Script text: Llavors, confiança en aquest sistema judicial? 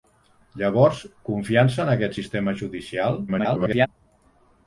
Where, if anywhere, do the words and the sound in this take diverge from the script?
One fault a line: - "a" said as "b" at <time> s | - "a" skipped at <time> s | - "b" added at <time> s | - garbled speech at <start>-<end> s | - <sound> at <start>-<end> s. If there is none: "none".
- garbled speech at 3.3-3.9 s